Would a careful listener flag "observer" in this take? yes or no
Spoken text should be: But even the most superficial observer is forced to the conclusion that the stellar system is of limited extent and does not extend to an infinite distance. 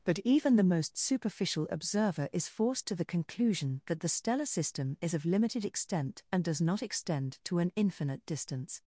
no